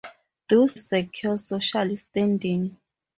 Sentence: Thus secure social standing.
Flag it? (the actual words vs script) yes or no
no